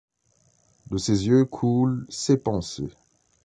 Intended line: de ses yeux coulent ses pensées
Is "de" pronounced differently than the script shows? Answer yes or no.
no